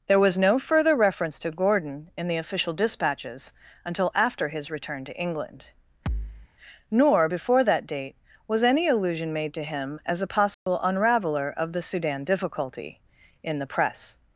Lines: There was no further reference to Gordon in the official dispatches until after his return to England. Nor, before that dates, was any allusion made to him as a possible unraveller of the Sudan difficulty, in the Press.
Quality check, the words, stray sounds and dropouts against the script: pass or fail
fail